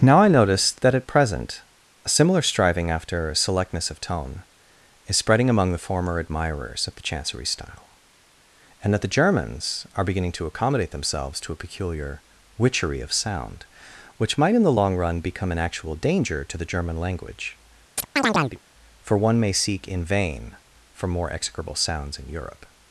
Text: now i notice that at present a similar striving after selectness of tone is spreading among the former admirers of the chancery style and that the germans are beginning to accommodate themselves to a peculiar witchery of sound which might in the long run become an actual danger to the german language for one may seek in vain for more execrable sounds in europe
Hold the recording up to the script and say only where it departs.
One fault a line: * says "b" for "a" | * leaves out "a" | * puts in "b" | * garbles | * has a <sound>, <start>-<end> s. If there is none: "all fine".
* has a chirp, 18.0-18.6 s